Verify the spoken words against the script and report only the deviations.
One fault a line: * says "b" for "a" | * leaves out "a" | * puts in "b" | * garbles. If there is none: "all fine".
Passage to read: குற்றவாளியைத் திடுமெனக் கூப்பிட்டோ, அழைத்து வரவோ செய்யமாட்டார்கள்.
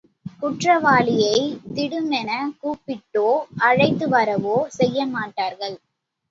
all fine